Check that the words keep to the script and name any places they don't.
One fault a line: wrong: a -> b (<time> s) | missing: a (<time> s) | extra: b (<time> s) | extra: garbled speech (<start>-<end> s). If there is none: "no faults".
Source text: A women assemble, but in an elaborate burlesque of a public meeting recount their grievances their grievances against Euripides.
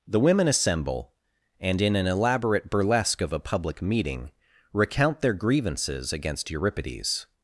wrong: A -> The (0.1 s)
wrong: but -> and (1.6 s)
missing: their grievances (6.1 s)